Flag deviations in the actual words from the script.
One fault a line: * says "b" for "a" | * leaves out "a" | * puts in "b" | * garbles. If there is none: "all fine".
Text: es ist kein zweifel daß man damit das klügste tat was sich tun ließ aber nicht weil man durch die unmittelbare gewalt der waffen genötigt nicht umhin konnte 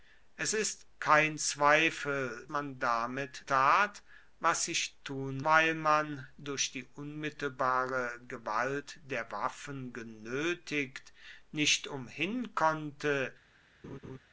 * leaves out "daß"
* leaves out "das klügste"
* leaves out "ließ aber nicht"